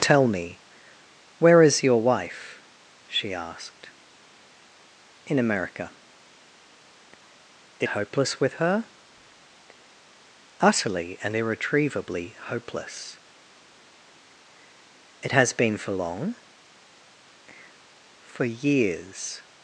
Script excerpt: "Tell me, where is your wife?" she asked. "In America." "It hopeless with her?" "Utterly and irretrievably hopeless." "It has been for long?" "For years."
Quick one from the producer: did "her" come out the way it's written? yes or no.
yes